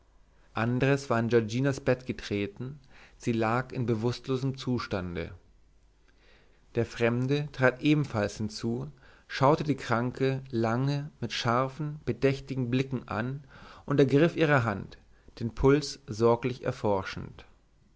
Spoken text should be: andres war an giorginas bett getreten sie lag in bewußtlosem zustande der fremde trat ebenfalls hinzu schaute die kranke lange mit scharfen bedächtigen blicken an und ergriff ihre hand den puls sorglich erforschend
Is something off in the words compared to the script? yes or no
no